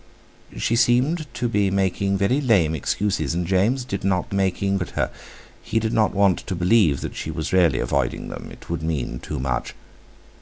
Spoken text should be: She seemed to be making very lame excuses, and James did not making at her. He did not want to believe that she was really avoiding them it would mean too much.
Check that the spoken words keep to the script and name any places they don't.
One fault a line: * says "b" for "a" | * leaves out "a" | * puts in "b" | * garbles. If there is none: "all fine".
all fine